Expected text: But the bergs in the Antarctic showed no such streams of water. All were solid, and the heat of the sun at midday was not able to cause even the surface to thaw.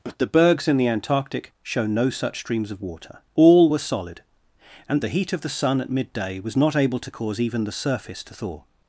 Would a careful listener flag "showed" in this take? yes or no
yes